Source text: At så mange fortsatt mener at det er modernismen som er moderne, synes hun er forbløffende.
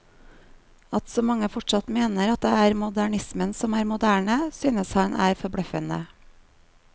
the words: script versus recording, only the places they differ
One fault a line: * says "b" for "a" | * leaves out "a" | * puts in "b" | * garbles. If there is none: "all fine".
* says "han" for "hun"